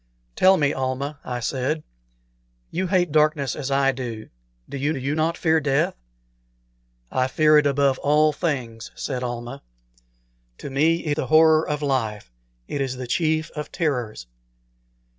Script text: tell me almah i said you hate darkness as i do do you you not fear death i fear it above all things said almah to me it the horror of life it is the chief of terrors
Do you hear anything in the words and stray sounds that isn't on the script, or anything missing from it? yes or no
no